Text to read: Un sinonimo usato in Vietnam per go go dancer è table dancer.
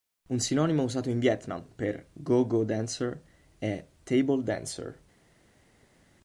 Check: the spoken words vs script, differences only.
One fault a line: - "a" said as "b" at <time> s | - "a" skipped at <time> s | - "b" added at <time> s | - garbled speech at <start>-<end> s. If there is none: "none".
none